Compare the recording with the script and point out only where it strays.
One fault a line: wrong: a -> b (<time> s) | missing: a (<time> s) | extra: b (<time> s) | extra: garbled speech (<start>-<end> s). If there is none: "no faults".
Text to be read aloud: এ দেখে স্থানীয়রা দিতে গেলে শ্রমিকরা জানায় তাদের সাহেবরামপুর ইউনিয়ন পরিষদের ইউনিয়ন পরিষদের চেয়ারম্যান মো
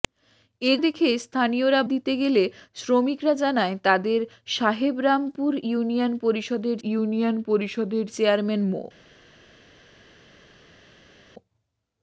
no faults